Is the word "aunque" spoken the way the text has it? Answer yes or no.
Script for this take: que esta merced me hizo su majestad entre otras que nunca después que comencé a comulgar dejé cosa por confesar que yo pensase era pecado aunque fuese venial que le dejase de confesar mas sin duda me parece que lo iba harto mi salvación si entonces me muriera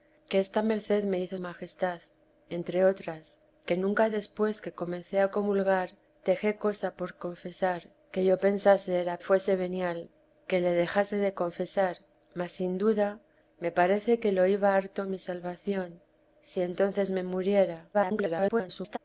no